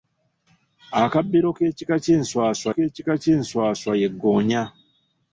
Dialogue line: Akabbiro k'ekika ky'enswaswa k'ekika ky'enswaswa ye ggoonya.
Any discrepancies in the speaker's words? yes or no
no